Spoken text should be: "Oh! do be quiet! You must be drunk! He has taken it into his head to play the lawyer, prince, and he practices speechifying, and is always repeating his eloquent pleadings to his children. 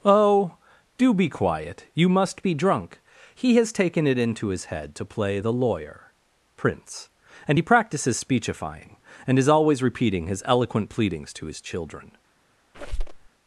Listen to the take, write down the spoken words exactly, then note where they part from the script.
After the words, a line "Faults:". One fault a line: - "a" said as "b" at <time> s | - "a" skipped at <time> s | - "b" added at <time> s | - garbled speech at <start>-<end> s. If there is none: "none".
"Oh! do be quiet! You must be drunk! He has taken it into his head to play the lawyer, prince, and he practices speechifying, and is always repeating his eloquent pleadings to his children.
Faults:
none